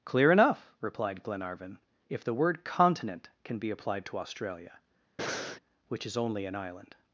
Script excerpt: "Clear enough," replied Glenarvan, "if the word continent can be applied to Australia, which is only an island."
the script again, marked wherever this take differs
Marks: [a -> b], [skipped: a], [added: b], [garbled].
"Clear enough," replied Glenarvan, "if the word continent can be applied to Australia, which is only an island."